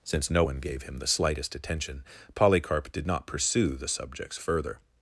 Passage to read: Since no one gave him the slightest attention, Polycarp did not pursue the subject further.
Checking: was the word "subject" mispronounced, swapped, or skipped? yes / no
yes